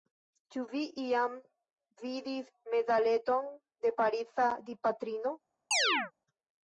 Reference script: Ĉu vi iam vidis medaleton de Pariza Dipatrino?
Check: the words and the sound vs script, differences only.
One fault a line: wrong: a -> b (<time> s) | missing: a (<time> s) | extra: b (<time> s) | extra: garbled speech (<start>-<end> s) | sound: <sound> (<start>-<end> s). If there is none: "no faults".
sound: chirp (5.7-6.1 s)